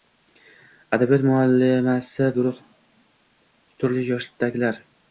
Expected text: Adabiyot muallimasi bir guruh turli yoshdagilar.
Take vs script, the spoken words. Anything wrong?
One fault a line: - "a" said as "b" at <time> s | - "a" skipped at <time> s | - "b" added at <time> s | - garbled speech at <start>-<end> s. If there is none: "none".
- "bir" skipped at 2.3 s